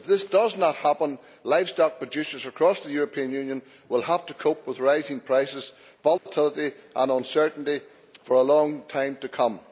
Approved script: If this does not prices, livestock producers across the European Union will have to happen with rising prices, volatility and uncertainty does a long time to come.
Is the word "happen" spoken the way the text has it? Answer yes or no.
no